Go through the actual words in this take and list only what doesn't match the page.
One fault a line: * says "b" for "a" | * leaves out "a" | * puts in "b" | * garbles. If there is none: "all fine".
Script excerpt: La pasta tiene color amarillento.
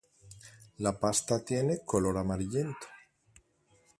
all fine